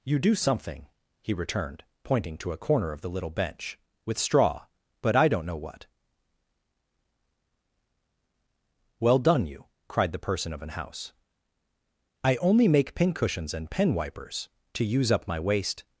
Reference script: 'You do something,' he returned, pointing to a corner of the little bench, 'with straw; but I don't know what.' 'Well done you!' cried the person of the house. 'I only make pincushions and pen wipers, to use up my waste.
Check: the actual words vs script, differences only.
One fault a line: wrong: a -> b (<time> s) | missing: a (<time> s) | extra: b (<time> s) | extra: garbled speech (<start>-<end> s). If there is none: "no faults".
wrong: the -> an (10.6 s)